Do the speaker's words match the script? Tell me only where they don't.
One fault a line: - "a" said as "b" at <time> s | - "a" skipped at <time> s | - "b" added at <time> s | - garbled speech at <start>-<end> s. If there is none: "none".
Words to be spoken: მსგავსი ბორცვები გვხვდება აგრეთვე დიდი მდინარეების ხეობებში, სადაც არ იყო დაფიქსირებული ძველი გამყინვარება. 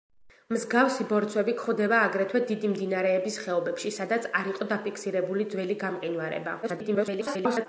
- garbled speech at 6.6-7.7 s